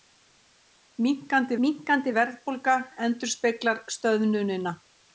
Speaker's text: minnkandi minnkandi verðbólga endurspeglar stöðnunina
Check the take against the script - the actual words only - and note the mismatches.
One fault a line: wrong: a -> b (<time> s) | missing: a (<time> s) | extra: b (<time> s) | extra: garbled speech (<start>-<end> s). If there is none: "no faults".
no faults